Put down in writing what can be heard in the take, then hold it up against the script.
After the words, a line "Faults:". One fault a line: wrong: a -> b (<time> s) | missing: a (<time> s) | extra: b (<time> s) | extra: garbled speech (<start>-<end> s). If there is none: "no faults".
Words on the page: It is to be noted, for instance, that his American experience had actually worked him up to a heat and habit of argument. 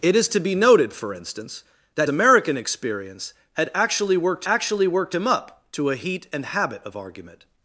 It is to be noted, for instance, that American experience had actually worked actually worked him up to a heat and habit of argument.
Faults:
missing: his (2.1 s)
extra: actually worked (4.5 s)